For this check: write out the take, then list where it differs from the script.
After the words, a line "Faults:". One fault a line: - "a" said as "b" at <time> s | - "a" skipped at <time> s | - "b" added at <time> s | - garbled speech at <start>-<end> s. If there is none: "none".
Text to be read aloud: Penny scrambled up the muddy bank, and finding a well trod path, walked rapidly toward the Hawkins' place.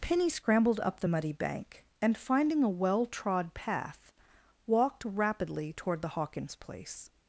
Penny scrambled up the muddy bank, and finding a well trod path, walked rapidly toward the Hawkins' place.
Faults:
none